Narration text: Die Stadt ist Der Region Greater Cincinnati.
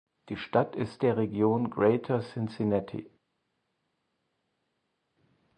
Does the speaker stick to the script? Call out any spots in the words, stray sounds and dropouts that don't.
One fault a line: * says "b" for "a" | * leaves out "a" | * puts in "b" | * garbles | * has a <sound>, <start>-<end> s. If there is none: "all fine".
all fine